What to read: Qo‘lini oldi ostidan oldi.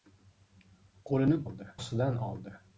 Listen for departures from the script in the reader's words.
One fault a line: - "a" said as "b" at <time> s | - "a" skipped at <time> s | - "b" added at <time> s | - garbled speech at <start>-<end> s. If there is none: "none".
none